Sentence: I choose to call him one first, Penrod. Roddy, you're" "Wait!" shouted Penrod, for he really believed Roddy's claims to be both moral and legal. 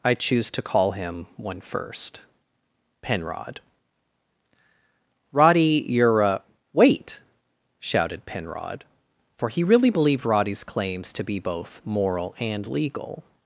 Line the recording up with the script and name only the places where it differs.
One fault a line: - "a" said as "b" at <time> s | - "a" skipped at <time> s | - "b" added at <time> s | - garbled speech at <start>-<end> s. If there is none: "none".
- "a" added at 6.2 s